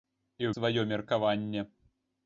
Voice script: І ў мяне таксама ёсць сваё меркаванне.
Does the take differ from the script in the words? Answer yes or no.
yes